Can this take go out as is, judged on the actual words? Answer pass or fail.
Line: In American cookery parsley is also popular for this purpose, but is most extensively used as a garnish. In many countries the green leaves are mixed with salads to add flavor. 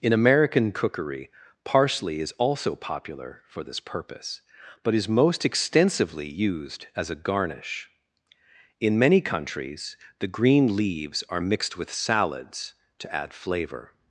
pass